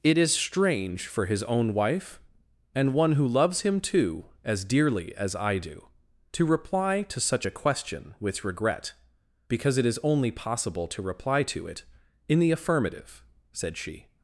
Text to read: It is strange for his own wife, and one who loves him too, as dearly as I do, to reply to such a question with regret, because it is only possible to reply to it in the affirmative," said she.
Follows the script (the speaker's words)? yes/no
yes